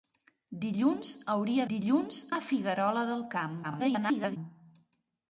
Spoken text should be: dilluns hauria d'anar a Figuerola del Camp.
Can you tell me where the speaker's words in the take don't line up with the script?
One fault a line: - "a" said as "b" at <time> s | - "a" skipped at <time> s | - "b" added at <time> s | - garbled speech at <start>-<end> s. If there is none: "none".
- "d'anar" said as "dilluns" at 1.7 s
- garbled speech at 3.6-4.4 s